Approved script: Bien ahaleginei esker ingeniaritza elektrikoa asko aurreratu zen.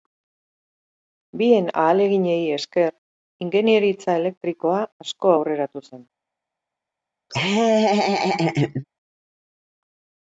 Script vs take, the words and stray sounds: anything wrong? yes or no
yes